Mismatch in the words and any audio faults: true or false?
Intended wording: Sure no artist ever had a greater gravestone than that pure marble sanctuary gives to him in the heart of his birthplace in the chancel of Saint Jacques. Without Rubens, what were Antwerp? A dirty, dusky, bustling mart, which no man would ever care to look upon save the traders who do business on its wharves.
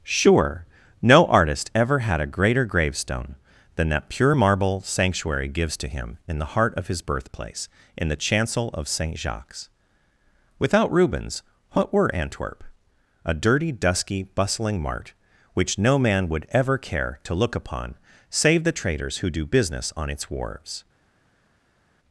false